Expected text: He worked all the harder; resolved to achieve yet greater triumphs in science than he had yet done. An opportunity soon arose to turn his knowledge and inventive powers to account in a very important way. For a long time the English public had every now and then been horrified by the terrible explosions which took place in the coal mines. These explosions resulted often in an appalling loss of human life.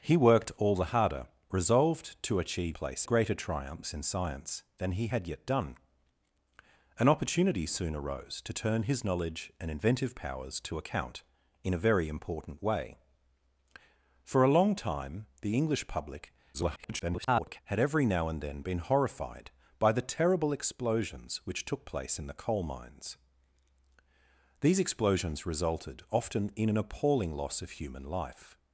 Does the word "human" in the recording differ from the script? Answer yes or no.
no